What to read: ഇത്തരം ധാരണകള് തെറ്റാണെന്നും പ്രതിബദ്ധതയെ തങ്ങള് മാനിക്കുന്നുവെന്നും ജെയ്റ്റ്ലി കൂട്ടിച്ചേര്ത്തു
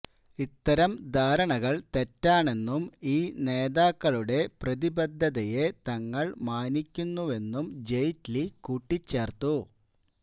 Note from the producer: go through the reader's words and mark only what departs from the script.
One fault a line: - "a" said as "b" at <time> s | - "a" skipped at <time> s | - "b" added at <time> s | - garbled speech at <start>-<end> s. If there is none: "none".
- "ഈ നേതാക്കളുടെ" added at 3.1 s